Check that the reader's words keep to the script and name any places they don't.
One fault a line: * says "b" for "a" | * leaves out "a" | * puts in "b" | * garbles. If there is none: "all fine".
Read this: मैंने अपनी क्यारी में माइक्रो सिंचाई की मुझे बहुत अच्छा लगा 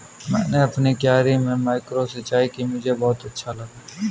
all fine